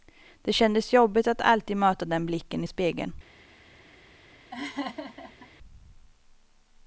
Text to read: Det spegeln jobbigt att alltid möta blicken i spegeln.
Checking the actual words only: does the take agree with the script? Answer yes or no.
no